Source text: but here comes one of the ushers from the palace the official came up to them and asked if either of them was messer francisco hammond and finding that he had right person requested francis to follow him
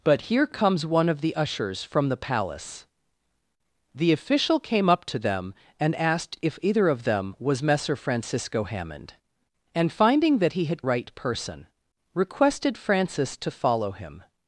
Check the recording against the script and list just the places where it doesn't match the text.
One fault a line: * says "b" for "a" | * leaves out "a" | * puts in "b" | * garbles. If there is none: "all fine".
all fine